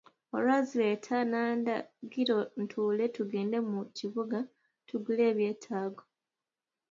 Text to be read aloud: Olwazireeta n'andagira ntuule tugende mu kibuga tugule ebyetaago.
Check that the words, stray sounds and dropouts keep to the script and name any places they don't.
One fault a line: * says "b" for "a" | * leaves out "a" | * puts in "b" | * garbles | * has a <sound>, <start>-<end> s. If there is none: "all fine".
all fine